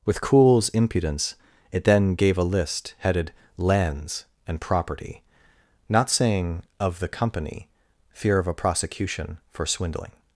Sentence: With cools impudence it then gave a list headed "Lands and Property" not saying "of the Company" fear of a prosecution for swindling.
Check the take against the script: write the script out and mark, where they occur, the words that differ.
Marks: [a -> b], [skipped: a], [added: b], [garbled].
With cools impudence it then gave a list headed "Lands and Property" not saying "of the Company" fear of a prosecution for swindling.